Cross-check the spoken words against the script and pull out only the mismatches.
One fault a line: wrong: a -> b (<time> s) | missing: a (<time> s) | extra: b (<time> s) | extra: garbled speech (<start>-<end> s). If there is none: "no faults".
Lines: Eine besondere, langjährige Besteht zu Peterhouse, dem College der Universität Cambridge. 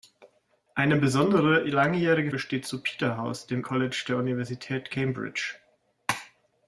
no faults